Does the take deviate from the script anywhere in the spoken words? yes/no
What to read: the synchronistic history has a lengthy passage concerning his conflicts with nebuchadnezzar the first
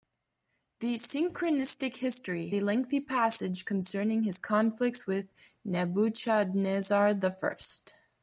yes